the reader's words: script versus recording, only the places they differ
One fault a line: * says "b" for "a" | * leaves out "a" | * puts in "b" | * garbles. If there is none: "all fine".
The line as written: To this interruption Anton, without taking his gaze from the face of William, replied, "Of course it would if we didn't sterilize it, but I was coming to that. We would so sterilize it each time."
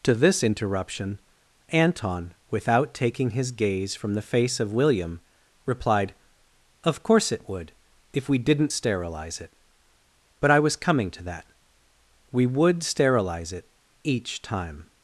* leaves out "so"